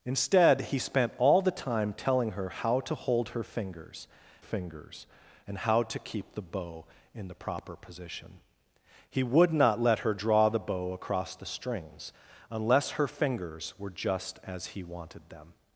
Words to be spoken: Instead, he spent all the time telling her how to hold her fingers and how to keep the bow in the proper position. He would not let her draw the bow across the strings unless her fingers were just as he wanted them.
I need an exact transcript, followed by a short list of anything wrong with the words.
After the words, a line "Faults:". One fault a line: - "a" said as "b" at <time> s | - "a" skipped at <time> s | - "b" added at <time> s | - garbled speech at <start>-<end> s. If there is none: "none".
Instead, he spent all the time telling her how to hold her fingers fingers and how to keep the bow in the proper position. He would not let her draw the bow across the strings unless her fingers were just as he wanted them.
Faults:
- "fingers" added at 4.4 s